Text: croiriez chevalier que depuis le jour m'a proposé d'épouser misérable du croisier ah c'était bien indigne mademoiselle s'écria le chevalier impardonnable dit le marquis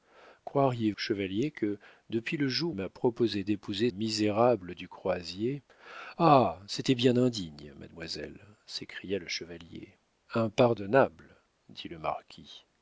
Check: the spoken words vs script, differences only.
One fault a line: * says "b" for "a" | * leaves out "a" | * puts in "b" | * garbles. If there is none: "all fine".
all fine